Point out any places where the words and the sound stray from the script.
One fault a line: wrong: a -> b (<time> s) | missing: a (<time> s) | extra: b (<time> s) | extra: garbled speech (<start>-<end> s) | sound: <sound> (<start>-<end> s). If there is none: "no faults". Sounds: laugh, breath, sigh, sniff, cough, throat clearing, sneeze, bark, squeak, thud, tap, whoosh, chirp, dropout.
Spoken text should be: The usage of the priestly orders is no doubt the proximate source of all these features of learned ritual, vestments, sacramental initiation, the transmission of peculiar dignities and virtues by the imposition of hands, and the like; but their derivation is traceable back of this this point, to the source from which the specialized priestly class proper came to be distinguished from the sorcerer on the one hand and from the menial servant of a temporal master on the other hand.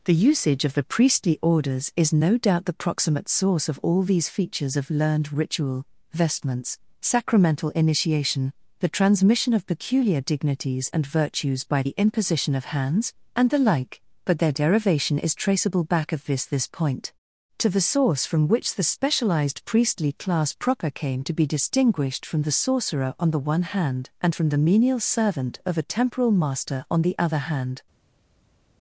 no faults